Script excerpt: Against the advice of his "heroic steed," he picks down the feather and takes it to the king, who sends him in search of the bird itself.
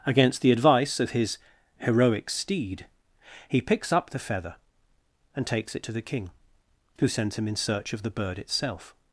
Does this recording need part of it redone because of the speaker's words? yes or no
yes